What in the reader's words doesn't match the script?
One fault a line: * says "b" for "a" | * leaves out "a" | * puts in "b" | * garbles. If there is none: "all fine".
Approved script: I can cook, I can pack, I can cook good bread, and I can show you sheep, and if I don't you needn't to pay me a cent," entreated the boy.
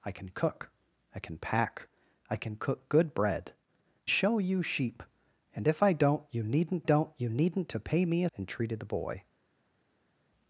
* leaves out "and I can"
* puts in "don't you needn't"
* leaves out "cent"